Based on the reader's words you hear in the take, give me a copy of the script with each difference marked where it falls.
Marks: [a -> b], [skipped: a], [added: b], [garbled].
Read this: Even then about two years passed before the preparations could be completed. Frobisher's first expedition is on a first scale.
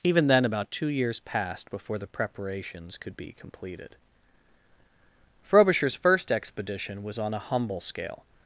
Even then about two years passed before the preparations could be completed. Frobisher's first expedition [is -> was] on a [first -> humble] scale.